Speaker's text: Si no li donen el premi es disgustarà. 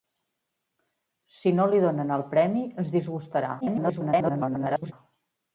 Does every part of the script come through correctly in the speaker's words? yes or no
no